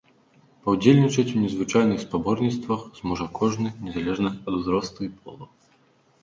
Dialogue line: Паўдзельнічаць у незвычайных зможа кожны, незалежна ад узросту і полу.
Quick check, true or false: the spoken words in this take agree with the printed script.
false